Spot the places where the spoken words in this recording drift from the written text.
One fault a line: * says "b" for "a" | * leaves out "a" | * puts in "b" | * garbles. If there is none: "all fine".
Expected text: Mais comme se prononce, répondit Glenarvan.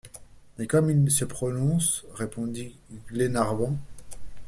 * puts in "il"